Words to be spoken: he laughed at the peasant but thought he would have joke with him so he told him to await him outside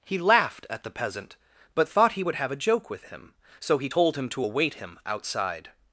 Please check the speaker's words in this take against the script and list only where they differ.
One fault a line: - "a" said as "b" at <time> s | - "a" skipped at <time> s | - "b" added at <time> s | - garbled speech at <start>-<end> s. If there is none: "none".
- "a" added at 2.5 s